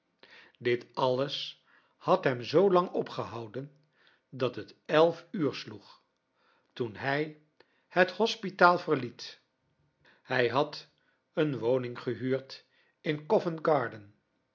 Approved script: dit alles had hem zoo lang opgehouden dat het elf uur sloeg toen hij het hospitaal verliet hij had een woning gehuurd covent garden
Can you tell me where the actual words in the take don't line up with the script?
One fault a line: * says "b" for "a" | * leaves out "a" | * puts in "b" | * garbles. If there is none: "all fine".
* puts in "in"